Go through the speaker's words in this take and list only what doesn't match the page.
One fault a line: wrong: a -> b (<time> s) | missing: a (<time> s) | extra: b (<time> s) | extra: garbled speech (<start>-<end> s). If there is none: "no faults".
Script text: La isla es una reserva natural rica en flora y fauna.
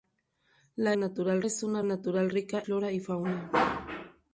wrong: isla -> natural (0.9 s)
missing: reserva (1.8 s)
missing: en (2.6 s)